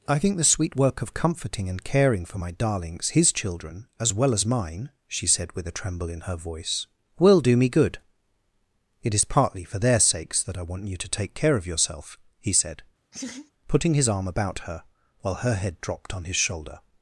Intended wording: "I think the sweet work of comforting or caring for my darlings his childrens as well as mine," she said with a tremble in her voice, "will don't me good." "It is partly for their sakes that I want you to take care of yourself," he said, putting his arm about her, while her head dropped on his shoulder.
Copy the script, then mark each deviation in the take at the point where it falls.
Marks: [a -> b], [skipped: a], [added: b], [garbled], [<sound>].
"I think the sweet work of comforting [or -> and] caring for my darlings his [childrens -> children] as well as mine," she said with a tremble in her voice, "will [don't -> do] me good." "It is partly for their sakes that I want you to take care of yourself," he said, [laugh] putting his arm about her, while her head dropped on his shoulder.